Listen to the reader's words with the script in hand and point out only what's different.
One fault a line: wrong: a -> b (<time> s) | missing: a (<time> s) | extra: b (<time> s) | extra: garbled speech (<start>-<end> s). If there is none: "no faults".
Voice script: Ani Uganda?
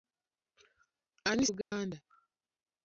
no faults